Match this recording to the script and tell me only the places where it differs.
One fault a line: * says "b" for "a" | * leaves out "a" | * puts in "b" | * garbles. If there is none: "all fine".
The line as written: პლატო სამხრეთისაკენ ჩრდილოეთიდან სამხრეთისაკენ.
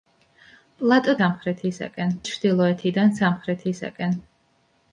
all fine